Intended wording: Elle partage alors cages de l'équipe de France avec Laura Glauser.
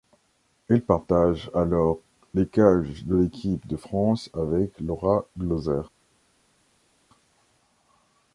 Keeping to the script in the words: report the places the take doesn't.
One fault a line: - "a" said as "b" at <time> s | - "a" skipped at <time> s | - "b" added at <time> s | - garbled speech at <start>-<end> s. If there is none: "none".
- "les" added at 2.3 s